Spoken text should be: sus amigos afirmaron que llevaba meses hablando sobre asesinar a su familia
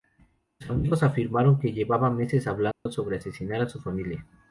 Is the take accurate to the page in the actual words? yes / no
yes